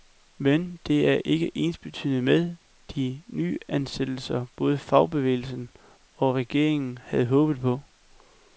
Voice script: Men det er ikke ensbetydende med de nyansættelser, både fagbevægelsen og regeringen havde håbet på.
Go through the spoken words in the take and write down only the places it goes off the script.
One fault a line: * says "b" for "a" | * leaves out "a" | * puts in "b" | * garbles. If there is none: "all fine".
all fine